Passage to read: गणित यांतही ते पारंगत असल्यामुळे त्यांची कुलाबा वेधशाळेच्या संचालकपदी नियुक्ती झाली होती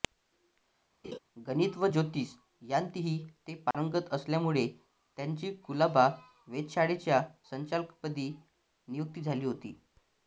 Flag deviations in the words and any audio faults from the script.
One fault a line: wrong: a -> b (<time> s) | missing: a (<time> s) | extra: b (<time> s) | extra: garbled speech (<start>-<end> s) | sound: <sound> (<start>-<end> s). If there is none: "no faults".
sound: laugh (1.0-1.2 s)
extra: व ज्योतिष (1.8 s)
sound: dropout (3.7-3.7 s)